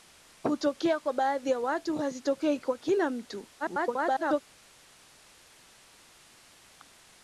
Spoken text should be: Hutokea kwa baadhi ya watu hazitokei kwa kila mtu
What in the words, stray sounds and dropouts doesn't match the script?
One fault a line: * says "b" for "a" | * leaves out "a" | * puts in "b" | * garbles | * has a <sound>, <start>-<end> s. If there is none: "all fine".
* garbles